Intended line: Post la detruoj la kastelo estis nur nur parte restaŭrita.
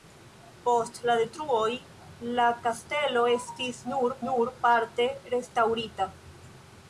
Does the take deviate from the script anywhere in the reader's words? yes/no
no